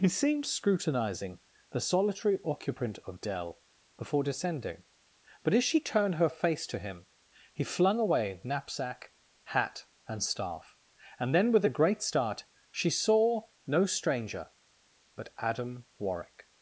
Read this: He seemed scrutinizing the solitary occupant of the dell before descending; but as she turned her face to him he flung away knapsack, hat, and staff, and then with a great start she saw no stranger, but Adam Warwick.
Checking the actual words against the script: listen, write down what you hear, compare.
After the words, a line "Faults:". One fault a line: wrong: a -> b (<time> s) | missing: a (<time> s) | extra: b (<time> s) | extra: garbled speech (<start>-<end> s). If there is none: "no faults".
He seemed scrutinizing the solitary occupant of dell before descending; but as she turned her face to him he flung away knapsack, hat, and staff, and then with a great start she saw no stranger, but Adam Warwick.
Faults:
missing: the (3.2 s)